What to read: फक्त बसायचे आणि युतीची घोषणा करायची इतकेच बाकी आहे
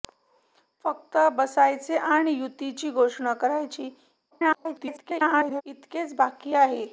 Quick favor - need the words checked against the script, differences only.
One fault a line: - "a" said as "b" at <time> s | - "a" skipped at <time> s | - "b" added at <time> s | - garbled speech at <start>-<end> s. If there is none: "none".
- garbled speech at 4.3-5.6 s